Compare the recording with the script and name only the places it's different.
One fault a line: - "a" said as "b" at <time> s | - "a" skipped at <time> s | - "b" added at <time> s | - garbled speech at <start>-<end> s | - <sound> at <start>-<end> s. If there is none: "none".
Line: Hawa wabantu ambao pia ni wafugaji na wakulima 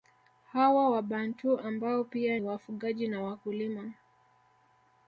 - "ni" skipped at 2.4 s